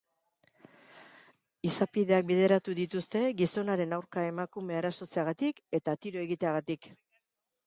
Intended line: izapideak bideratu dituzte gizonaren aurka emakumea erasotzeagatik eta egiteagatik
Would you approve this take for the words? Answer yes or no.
no